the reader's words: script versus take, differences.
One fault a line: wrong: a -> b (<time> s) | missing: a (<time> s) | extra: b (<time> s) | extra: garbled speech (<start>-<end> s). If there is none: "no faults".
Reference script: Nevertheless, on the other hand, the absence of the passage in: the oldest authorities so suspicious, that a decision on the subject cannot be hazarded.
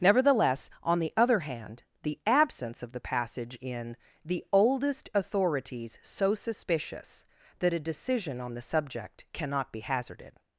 no faults